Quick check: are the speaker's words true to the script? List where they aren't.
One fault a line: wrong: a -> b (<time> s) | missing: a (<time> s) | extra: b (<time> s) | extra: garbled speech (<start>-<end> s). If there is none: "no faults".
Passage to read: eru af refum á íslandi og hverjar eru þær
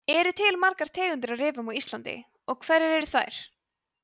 extra: til margar tegundir (0.4 s)